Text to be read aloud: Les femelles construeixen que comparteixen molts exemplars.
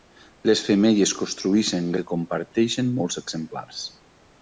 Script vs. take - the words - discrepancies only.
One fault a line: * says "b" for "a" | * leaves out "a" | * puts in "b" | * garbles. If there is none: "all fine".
all fine